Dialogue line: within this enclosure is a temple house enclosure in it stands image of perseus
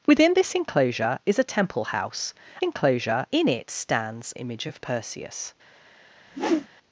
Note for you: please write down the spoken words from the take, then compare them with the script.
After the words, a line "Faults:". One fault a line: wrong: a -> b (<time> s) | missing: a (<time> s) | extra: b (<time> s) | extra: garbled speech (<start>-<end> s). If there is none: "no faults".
within this enclosure is a temple house enclosure in it stands image of perseus
Faults:
no faults